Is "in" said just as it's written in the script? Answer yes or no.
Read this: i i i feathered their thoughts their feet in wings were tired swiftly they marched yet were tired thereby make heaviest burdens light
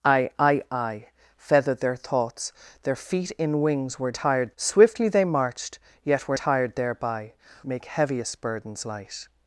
yes